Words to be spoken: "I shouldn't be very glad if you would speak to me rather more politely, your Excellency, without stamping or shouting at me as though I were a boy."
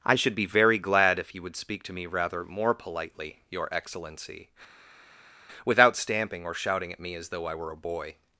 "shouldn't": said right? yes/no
no